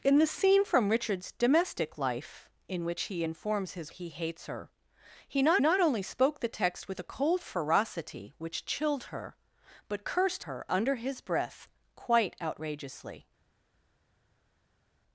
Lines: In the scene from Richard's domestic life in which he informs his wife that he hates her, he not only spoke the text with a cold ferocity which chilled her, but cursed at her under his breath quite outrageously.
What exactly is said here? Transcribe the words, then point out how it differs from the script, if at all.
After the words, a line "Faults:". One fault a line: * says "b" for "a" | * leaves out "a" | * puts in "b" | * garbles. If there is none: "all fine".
In the scene from Richard's domestic life in which he informs his he hates her, he not not only spoke the text with a cold ferocity which chilled her, but cursed her under his breath quite outrageously.
Faults:
* leaves out "wife that"
* puts in "not"
* leaves out "at"